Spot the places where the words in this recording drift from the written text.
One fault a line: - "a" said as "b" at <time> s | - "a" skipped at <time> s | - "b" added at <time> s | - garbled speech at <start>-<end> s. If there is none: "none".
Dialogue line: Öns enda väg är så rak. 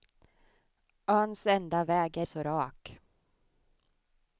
none